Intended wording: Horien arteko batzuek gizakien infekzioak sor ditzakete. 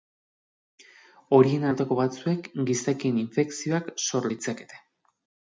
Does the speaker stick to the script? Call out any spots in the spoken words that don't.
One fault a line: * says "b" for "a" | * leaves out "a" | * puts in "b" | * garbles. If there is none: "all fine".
all fine